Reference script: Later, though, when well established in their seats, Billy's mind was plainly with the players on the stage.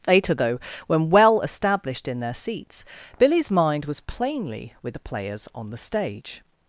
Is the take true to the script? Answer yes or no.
yes